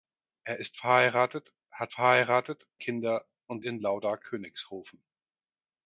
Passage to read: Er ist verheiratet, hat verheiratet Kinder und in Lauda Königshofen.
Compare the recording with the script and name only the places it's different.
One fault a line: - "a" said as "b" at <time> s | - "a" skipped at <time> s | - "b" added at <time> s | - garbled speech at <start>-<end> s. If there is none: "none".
none